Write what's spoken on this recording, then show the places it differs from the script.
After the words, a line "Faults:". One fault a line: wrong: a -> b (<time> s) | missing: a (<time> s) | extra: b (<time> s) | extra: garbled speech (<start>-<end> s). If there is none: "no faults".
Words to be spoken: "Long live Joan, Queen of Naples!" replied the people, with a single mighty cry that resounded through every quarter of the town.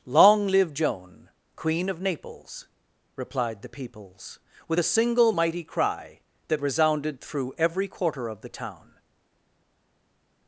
"Long live Joan, Queen of Naples!" replied the peoples, with a single mighty cry that resounded through every quarter of the town.
Faults:
wrong: people -> peoples (3.7 s)